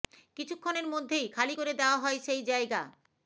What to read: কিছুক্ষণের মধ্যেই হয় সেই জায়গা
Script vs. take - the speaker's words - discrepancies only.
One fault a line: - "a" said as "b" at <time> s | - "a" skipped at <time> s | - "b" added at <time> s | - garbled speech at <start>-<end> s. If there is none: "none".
- "খালি করে দেওয়া" added at 1.3 s